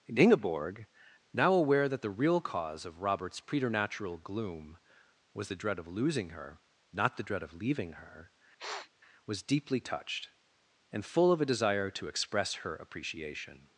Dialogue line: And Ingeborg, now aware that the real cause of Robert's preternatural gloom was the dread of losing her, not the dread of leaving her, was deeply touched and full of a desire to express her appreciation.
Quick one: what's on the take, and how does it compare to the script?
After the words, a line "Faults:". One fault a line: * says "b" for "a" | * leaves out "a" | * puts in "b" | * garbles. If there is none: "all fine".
And Ingeborg, now aware that the real cause of Robert's preternatural gloom was the dread of losing her, not the dread of leaving her, was deeply touched and full of a desire to express her appreciation.
Faults:
all fine